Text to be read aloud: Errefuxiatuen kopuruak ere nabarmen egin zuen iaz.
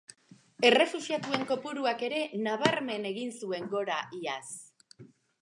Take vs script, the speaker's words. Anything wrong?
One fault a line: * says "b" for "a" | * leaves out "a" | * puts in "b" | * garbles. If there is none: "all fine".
* puts in "gora"